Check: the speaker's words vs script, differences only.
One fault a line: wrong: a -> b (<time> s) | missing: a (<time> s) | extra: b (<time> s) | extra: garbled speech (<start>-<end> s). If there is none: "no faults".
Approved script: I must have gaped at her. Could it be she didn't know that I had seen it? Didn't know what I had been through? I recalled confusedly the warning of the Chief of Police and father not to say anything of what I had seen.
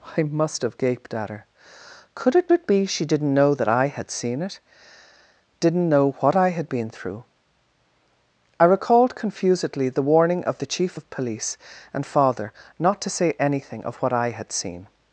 extra: it (2.5 s)